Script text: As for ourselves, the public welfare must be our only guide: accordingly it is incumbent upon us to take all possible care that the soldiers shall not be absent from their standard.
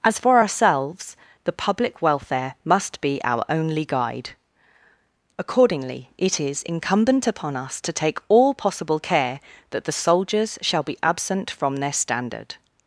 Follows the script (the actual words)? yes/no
no